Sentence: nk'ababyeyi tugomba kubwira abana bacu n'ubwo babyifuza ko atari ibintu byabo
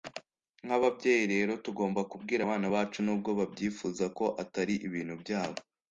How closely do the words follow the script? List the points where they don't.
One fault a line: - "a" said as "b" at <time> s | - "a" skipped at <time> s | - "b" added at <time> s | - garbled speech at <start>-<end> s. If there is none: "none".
- "rero" added at 1.3 s